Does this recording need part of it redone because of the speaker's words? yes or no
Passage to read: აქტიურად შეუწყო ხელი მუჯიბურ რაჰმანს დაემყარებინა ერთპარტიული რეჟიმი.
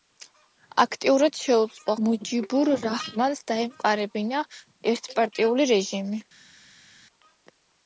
yes